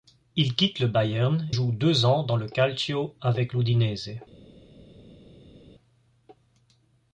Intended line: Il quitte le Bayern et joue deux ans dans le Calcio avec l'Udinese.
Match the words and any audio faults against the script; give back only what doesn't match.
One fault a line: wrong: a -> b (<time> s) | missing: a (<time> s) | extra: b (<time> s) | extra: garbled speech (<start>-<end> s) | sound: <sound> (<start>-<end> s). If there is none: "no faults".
missing: et (1.5 s)